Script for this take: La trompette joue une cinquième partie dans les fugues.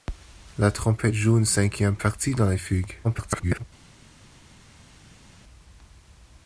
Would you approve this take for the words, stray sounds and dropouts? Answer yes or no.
no